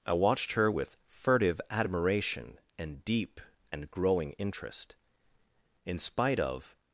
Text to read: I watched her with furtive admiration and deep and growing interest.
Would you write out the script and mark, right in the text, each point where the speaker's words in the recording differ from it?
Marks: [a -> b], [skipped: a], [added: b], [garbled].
I watched her with furtive admiration and deep and growing interest. [added: In spite of]